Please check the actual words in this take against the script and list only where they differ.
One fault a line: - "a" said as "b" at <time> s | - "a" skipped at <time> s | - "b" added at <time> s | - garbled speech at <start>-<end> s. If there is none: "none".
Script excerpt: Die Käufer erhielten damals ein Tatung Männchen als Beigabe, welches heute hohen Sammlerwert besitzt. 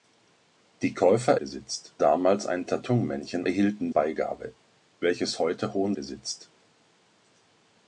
- "erhielten" said as "besitzt" at 1.4 s
- "als" said as "erhielten" at 3.4 s
- "Sammlerwert" skipped at 5.9 s